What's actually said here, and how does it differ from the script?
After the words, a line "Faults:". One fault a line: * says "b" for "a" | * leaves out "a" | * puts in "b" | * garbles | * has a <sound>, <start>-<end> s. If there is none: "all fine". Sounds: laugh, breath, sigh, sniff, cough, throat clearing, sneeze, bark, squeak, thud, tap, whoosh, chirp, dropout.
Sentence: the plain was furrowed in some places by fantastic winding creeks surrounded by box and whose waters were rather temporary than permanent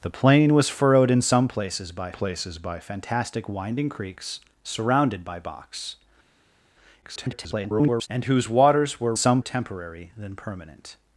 the plain was furrowed in some places by places by fantastic winding creeks surrounded by box [garbled] and whose waters were some temporary than permanent
Faults:
* puts in "places by"
* garbles
* says "some" for "rather"